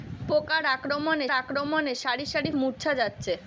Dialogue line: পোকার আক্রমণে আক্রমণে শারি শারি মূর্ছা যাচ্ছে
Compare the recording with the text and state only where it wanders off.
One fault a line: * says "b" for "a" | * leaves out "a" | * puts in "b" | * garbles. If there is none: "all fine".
all fine